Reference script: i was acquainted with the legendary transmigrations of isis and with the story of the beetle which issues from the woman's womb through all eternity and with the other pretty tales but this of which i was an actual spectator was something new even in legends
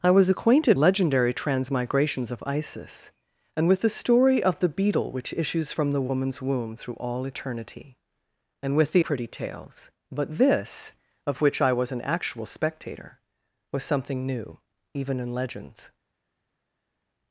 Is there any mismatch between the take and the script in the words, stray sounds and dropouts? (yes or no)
yes